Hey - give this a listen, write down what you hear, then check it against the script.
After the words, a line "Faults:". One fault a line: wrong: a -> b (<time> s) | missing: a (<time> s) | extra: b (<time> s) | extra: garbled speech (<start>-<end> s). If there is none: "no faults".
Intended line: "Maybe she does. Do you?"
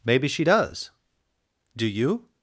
"Maybe she does. Do you?"
Faults:
no faults